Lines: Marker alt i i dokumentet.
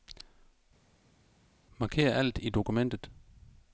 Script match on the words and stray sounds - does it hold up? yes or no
no